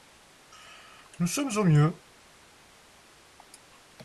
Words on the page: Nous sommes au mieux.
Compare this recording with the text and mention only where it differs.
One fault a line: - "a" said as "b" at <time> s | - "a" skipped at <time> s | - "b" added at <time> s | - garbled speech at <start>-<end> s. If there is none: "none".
none